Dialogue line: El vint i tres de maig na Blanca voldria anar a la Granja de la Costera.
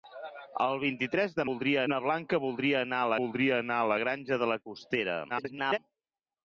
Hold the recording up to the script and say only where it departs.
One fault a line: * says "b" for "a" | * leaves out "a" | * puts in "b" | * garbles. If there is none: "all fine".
* says "voldria" for "maig"
* puts in "voldria anar a"
* garbles